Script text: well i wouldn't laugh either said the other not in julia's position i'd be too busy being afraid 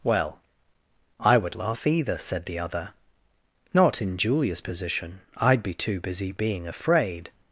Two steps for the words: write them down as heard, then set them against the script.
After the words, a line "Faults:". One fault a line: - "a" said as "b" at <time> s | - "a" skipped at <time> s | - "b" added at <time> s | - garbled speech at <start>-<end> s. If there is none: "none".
well i would laugh either said the other not in julia's position i'd be too busy being afraid
Faults:
- "wouldn't" said as "would" at 1.4 s